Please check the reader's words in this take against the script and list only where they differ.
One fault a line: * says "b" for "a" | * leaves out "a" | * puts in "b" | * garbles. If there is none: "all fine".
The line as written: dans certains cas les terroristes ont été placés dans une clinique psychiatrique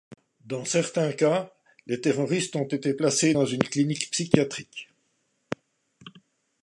all fine